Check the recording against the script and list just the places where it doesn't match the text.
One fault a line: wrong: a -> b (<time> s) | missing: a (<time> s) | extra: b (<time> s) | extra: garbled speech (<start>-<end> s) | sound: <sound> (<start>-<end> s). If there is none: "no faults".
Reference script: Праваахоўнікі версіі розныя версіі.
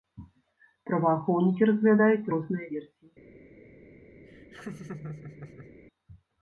wrong: версіі -> разглядаюць (1.7 s)
sound: laugh (4.2-5.8 s)